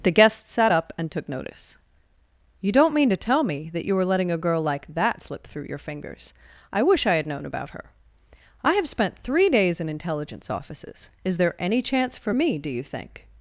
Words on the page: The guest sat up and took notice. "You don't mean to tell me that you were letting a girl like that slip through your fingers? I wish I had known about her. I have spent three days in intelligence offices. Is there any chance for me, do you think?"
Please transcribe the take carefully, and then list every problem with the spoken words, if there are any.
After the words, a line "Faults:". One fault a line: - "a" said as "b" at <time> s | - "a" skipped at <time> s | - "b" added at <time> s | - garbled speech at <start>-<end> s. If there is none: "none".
The guest sat up and took notice. "You don't mean to tell me that you were letting a girl like that slip through your fingers? I wish I had known about her. I have spent three days in intelligence offices. Is there any chance for me, do you think?"
Faults:
none